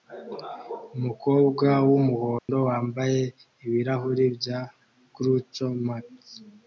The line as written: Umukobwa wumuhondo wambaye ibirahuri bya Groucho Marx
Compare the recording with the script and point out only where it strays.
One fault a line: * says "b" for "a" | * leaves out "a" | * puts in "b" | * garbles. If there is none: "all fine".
all fine